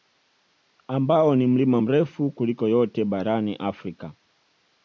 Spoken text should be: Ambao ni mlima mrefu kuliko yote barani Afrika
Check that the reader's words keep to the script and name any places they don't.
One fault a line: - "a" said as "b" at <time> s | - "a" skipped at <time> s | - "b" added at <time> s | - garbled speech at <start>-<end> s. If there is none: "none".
none